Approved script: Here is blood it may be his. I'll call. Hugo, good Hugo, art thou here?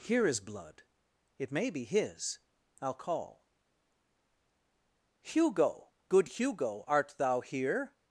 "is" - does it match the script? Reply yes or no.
yes